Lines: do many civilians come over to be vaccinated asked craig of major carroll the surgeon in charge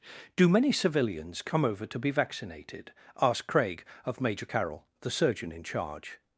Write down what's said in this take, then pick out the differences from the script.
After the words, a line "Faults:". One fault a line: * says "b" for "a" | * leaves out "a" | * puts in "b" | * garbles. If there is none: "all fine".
do many civilians come over to be vaccinated asked craig of major carroll the surgeon in charge
Faults:
all fine